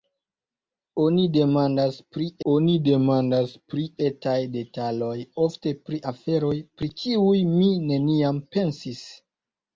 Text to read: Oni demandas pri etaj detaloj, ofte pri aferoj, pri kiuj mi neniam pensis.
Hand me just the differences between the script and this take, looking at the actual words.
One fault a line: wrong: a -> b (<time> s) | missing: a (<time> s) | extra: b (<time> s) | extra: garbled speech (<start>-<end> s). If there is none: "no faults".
extra: oni demandas pri (2.5 s)